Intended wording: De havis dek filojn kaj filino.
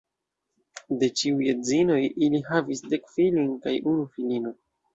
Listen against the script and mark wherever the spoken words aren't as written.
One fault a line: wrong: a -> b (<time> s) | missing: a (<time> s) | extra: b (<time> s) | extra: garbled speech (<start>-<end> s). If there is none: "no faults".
extra: ĉiuj edzinoj ili (1.2 s)
extra: unu (4.0 s)